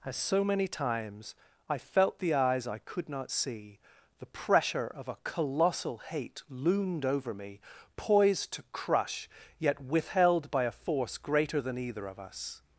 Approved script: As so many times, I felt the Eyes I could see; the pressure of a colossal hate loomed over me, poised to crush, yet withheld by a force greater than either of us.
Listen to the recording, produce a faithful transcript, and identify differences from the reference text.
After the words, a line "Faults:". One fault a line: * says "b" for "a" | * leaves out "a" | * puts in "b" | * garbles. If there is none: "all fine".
As so many times, I felt the Eyes I could not see; the pressure of a colossal hate loomed over me, poised to crush, yet withheld by a force greater than either of us.
Faults:
* puts in "not"